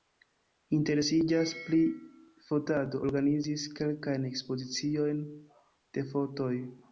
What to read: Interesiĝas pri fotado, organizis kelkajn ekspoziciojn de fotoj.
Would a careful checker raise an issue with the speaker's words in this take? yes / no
no